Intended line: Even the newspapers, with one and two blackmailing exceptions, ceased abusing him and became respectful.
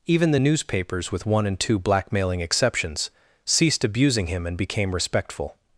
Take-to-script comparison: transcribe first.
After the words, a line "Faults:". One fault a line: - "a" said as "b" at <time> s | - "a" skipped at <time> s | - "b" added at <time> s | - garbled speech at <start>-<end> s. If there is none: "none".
Even the newspapers, with one and two blackmailing exceptions, ceased abusing him and became respectful.
Faults:
none